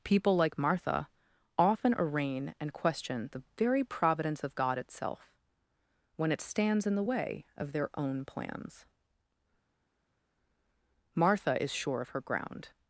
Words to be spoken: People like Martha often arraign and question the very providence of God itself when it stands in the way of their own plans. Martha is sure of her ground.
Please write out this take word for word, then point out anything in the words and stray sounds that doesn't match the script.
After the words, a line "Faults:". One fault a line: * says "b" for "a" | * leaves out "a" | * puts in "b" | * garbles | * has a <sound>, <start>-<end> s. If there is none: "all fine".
People like Martha often arraign and question the very providence of God itself when it stands in the way of their own plans. Martha is sure of her ground.
Faults:
all fine